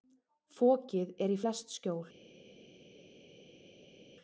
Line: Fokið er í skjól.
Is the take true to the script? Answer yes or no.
no